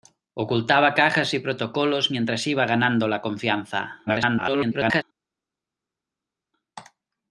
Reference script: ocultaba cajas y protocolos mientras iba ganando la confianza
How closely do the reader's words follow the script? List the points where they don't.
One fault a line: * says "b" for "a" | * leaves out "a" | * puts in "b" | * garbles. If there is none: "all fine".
* garbles